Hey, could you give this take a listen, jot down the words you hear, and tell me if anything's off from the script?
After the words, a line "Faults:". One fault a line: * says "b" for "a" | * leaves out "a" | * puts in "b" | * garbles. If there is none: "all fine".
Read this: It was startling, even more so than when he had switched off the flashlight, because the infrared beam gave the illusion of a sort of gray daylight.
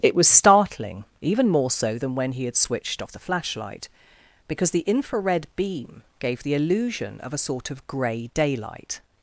It was startling, even more so than when he had switched off the flashlight, because the infrared beam gave the illusion of a sort of gray daylight.
Faults:
all fine